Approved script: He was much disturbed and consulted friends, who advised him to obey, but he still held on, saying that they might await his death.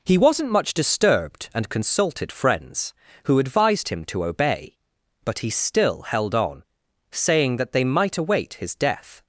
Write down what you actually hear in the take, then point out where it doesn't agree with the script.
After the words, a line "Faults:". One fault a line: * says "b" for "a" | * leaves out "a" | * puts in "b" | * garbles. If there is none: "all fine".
He wasn't much disturbed and consulted friends, who advised him to obey, but he still held on, saying that they might await his death.
Faults:
* says "wasn't" for "was"